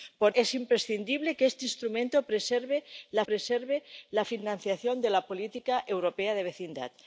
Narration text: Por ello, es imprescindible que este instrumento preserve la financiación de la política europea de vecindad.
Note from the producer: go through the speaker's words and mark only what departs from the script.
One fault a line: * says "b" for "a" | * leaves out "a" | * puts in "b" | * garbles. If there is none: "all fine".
* leaves out "ello"
* puts in "preserve la"